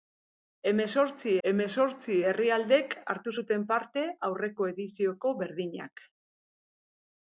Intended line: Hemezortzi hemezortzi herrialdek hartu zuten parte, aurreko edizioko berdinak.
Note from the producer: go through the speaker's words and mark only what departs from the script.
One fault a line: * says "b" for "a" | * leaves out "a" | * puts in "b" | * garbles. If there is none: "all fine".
all fine